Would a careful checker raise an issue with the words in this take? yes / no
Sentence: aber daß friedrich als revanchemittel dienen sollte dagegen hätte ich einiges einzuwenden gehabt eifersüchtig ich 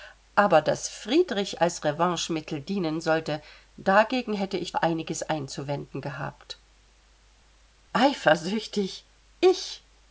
no